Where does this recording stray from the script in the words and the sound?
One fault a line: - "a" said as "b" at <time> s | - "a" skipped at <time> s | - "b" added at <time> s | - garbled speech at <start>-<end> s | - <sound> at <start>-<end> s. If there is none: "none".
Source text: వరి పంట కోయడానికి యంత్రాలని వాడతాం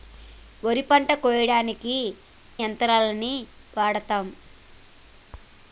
none